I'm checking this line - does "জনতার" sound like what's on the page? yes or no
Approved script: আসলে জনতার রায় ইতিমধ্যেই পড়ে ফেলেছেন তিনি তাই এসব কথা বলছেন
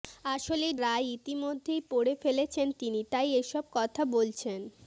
no